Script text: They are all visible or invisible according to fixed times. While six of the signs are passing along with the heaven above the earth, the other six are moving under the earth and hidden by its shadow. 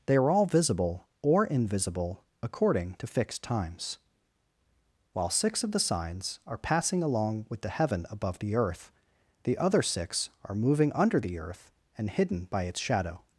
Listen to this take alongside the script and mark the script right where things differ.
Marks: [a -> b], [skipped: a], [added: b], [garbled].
They are all visible or invisible according to fixed times. While six of the signs are passing along with the heaven above the earth, the other six are moving under the earth and hidden by its shadow.